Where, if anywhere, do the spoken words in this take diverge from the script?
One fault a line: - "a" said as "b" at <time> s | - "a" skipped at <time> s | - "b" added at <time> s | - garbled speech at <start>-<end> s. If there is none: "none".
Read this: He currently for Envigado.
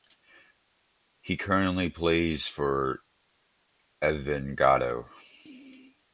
- "plays" added at 1.9 s